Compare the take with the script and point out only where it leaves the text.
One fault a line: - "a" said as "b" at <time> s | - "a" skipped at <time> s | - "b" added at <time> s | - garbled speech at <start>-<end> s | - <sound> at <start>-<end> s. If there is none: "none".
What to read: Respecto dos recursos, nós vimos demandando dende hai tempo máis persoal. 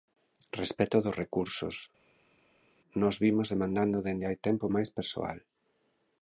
none